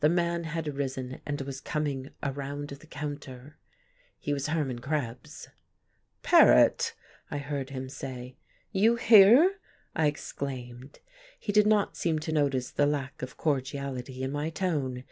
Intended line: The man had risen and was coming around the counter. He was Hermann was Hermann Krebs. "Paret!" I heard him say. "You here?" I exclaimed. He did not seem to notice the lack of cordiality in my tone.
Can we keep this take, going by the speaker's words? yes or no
no